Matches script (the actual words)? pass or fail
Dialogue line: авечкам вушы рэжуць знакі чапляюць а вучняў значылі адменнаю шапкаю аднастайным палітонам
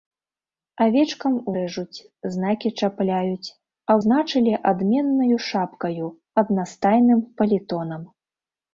fail